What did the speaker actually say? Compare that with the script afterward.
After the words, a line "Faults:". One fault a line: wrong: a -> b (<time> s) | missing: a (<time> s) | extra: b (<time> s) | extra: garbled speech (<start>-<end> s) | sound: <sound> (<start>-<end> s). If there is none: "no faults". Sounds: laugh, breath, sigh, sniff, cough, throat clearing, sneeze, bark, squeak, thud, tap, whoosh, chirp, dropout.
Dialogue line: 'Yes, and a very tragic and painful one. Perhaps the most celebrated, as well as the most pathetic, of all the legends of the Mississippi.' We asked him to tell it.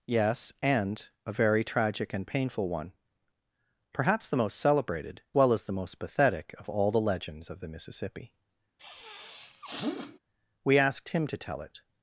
'Yes, and a very tragic and painful one. Perhaps the most celebrated, well as the most pathetic, of all the legends of the Mississippi.' We asked him to tell it.
Faults:
missing: as (5.2 s)
sound: sniff (8.8-10.2 s)